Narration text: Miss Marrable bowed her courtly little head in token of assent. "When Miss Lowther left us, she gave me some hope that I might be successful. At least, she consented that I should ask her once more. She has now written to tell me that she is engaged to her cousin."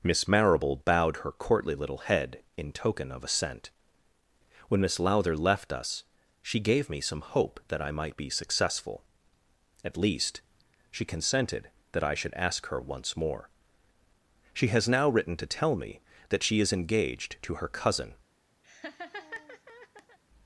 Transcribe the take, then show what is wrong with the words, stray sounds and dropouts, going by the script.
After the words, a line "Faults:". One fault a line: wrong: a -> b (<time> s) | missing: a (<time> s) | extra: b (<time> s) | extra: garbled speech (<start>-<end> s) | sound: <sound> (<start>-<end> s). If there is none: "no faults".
Miss Marrable bowed her courtly little head in token of assent. "When Miss Lowther left us, she gave me some hope that I might be successful. At least, she consented that I should ask her once more. She has now written to tell me that she is engaged to her cousin."
Faults:
sound: laugh (18.6-20.2 s)